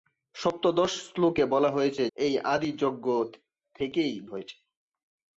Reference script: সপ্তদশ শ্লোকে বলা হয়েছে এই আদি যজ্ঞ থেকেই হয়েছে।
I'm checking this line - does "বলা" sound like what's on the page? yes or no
yes